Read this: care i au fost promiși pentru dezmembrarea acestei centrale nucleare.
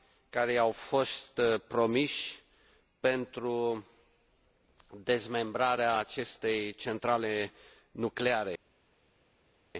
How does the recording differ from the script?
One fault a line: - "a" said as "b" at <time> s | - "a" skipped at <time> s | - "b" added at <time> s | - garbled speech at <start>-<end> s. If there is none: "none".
none